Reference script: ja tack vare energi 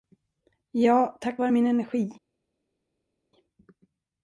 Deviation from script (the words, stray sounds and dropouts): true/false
true